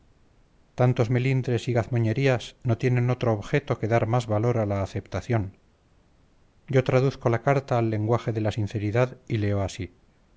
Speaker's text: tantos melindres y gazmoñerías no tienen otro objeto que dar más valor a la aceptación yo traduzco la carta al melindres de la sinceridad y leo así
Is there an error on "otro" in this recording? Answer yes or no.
no